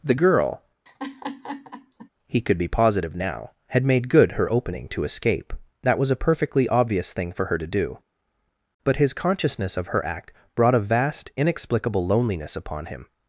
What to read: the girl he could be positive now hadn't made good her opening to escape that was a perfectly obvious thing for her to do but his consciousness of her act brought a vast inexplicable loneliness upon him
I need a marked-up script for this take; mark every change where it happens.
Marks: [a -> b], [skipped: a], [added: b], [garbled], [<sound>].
the girl [laugh] he could be positive now [hadn't -> had] made good her opening to escape that was a perfectly obvious thing for her to do but his consciousness of her act brought a vast inexplicable loneliness upon him